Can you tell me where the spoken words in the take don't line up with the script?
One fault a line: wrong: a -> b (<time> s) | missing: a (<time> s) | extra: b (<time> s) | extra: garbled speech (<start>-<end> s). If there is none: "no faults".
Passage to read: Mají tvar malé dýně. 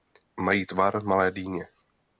no faults